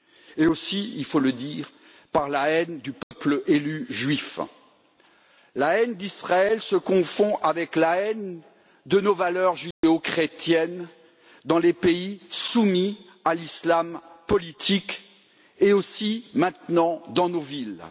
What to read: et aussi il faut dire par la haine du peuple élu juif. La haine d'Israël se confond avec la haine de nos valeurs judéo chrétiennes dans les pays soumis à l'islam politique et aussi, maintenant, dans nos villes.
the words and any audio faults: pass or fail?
fail